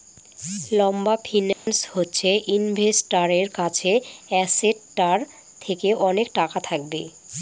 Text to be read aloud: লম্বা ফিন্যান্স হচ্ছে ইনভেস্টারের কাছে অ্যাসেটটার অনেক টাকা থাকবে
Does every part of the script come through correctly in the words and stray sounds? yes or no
no